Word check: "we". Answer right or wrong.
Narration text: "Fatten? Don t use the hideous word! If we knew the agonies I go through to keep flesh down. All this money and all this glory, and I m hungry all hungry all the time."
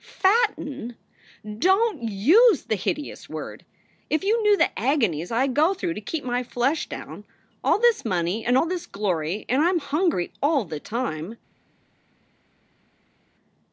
wrong